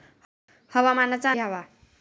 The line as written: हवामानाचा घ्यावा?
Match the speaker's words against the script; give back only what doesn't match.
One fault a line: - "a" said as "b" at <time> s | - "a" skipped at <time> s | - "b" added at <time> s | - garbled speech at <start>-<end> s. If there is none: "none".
none